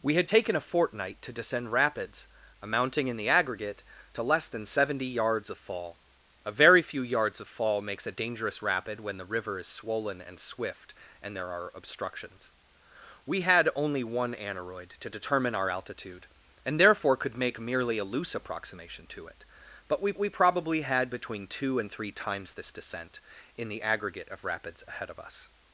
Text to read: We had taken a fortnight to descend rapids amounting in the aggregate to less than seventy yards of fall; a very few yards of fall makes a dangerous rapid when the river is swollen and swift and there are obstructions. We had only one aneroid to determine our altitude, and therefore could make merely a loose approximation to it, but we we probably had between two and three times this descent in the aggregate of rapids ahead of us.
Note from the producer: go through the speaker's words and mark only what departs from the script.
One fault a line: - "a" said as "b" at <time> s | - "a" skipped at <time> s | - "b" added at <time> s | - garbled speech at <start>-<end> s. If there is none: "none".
none